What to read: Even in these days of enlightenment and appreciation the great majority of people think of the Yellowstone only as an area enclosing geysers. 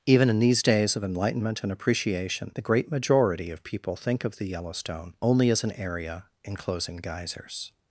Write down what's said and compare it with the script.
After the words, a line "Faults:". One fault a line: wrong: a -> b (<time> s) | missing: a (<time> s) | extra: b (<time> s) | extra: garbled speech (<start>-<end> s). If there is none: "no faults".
Even in these days of enlightenment and appreciation the great majority of people think of the Yellowstone only as an area enclosing geysers.
Faults:
no faults